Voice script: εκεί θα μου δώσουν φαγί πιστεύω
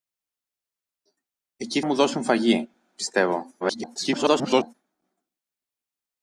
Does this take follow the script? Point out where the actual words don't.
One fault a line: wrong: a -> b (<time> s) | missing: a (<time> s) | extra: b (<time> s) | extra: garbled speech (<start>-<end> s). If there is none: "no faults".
missing: θα (1.8 s)
extra: garbled speech (3.6-4.7 s)